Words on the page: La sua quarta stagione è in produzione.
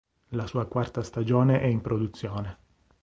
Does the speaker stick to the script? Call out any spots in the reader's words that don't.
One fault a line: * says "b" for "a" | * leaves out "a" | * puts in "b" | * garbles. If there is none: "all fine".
all fine